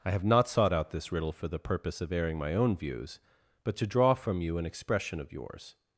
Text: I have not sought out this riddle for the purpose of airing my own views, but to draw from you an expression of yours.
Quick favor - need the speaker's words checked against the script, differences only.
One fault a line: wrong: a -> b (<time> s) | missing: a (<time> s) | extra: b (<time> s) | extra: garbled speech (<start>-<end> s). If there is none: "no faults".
no faults